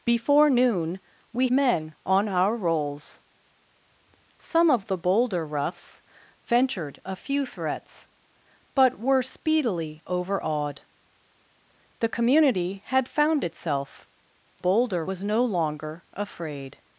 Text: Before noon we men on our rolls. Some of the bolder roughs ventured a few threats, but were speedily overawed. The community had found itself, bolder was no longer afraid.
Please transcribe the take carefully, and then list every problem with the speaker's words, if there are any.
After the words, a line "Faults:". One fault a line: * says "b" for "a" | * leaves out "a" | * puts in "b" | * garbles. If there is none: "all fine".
Before noon we men on our rolls. Some of the bolder roughs ventured a few threats, but were speedily overawed. The community had found itself, bolder was no longer afraid.
Faults:
all fine